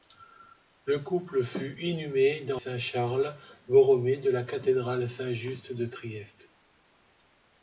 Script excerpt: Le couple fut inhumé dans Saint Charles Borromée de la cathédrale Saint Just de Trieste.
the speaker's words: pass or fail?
pass